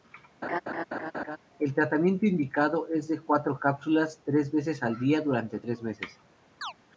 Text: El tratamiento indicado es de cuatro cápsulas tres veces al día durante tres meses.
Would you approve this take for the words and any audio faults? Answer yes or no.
no